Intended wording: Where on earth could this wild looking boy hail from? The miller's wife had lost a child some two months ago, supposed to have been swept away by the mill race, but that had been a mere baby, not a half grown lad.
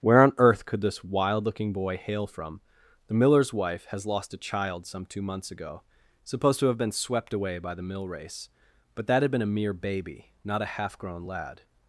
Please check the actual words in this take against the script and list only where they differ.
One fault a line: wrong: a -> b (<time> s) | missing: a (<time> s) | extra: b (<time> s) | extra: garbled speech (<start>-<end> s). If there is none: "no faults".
wrong: had -> has (3.9 s)